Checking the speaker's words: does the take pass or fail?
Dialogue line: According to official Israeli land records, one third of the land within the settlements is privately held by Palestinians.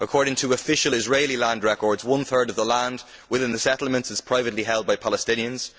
pass